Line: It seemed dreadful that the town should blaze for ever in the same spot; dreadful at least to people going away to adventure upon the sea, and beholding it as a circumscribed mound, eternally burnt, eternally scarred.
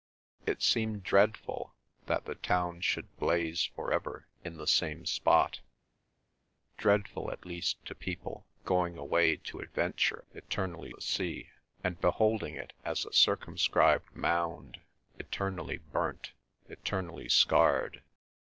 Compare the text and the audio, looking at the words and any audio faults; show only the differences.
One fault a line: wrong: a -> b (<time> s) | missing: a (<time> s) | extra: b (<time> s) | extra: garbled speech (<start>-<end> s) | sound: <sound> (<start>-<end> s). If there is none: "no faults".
wrong: upon -> eternally (10.3 s)